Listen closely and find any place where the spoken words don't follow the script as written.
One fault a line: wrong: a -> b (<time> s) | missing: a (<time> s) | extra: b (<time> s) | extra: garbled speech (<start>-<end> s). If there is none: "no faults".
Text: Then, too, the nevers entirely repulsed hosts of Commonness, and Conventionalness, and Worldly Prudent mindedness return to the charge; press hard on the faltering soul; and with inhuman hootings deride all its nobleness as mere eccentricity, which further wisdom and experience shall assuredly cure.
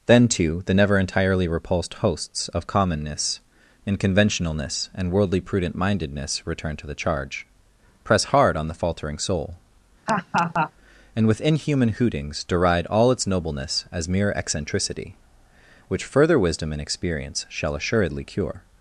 wrong: nevers -> never (0.7 s)